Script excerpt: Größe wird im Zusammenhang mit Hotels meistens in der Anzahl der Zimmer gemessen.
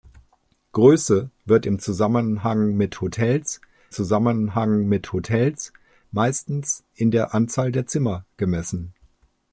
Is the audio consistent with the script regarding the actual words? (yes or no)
no